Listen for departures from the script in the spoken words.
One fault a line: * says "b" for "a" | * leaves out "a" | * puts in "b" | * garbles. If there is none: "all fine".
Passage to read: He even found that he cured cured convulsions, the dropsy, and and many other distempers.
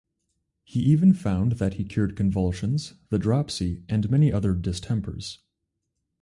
* leaves out "cured"
* leaves out "and"